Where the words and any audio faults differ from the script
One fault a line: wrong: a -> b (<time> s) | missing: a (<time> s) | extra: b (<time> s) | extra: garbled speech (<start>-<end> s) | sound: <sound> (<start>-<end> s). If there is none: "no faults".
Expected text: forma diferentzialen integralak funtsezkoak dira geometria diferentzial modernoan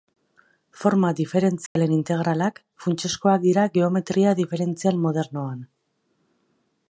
sound: dropout (1.7-1.8 s)